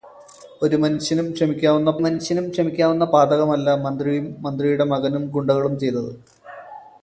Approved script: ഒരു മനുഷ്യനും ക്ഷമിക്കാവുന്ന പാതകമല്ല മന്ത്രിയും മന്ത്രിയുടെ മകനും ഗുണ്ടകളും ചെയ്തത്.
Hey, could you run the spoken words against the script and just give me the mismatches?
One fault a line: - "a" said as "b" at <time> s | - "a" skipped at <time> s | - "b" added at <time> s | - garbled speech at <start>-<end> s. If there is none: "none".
- "മനുഷ്യനും ക്ഷമിക്കാവുന്ന" added at 2.0 s